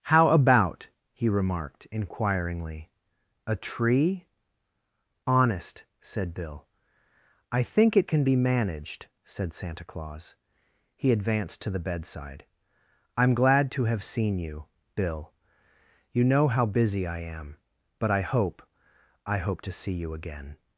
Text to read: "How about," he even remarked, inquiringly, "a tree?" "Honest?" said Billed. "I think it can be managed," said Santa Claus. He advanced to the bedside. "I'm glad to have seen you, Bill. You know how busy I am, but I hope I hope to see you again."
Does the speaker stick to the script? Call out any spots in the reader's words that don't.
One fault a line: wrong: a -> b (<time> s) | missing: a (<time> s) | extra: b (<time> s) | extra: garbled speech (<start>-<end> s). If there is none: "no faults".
missing: even (1.3 s)
wrong: Billed -> Bill (6.3 s)